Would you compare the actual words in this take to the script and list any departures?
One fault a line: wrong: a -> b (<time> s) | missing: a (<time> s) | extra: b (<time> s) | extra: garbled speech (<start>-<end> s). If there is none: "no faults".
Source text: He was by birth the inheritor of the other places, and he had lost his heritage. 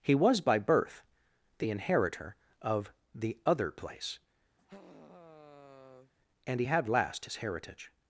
wrong: places -> place (3.7 s)
wrong: lost -> last (6.9 s)